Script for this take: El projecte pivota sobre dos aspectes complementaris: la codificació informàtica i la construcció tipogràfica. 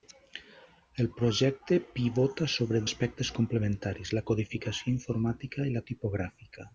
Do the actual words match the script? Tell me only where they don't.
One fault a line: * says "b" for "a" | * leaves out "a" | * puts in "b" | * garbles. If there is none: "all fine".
* leaves out "dos"
* leaves out "construcció"